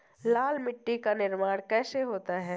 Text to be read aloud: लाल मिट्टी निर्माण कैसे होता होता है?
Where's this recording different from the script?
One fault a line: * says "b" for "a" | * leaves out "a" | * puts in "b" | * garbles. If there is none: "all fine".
* puts in "का"
* leaves out "होता"